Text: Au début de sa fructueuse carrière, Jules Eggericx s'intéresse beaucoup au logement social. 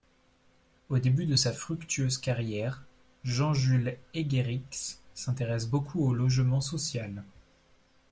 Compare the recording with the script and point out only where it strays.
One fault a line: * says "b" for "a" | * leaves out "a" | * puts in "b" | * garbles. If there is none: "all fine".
* puts in "Jean"